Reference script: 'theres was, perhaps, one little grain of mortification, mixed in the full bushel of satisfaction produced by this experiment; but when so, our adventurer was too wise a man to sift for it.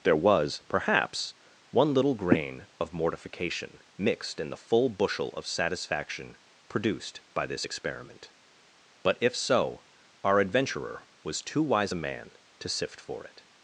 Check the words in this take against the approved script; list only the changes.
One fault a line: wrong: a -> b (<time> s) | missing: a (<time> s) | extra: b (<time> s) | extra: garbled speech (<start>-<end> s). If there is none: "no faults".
wrong: theres -> there (0.0 s)
wrong: when -> if (9.2 s)